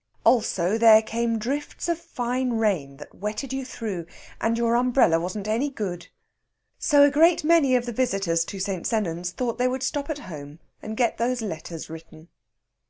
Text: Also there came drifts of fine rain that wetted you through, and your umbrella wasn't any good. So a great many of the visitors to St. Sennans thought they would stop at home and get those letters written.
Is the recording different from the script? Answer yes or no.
no